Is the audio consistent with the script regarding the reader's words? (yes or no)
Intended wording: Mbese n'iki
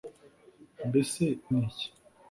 yes